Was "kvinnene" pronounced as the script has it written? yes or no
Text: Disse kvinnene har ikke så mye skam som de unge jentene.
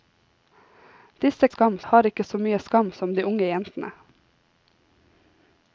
no